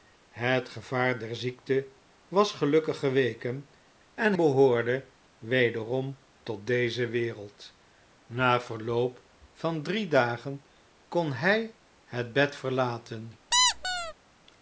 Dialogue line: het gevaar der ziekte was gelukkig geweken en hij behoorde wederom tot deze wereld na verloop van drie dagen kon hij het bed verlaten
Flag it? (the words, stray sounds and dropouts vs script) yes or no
yes